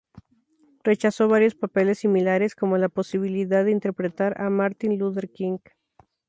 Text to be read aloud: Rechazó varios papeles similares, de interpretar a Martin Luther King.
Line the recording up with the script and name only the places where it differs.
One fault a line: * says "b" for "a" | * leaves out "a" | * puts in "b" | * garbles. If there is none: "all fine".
* puts in "como la posibilidad"